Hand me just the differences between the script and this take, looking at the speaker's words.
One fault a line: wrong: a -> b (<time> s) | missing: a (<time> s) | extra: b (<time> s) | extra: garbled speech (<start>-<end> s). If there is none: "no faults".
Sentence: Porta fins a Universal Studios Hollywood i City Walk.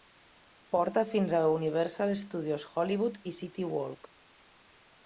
no faults